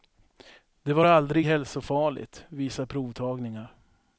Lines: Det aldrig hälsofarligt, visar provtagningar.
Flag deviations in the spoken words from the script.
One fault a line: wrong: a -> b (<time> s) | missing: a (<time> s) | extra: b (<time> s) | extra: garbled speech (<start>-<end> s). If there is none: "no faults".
extra: var (0.9 s)